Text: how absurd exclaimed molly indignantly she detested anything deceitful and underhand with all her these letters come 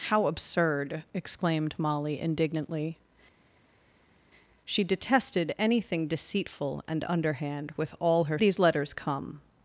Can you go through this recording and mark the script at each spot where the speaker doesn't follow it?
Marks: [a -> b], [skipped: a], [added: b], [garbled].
how absurd exclaimed molly indignantly she detested anything deceitful and underhand with all her these letters come